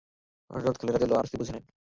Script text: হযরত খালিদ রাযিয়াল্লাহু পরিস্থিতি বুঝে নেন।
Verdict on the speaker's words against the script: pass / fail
pass